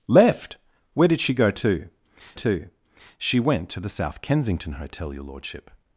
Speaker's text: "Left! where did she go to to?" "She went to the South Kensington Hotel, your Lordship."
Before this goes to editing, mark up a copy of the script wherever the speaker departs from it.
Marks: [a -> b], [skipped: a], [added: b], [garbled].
"Left! where did she go to to?" "She went to the South Kensington Hotel, your Lordship."